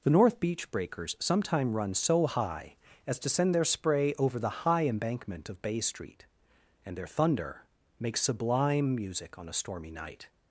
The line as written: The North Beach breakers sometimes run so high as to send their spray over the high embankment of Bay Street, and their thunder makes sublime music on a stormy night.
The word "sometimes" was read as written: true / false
false